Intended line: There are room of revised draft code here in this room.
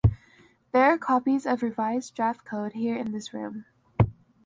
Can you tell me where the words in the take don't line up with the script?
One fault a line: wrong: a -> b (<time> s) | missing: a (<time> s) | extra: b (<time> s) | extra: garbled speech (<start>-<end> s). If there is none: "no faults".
wrong: room -> copies (1.0 s)